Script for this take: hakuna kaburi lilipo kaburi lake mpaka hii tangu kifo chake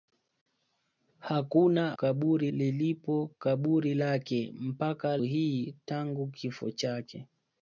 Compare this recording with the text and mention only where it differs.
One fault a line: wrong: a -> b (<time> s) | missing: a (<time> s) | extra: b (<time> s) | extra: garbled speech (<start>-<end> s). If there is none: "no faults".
no faults